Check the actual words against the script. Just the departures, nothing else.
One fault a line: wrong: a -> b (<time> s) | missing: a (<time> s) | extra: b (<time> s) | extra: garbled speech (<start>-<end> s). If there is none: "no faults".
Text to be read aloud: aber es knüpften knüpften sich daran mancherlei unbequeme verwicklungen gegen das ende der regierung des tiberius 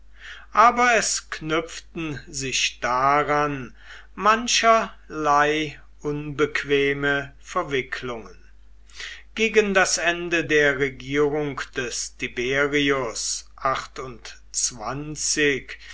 missing: knüpften (2.2 s)